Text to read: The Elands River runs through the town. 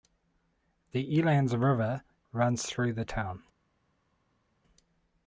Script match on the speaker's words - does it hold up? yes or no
yes